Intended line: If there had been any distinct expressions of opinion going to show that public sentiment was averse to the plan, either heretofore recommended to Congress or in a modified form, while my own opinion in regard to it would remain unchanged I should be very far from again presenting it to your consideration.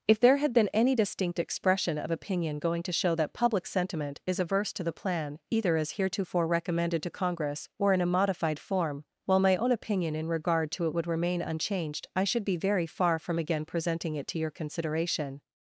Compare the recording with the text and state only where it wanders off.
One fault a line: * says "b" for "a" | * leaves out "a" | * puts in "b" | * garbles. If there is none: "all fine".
* says "expression" for "expressions"
* says "is" for "was"
* puts in "as"